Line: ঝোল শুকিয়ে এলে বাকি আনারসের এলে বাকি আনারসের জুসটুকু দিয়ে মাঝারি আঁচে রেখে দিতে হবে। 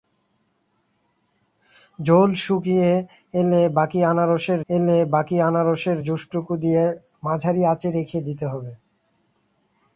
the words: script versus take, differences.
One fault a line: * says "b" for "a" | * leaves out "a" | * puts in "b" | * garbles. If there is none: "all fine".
all fine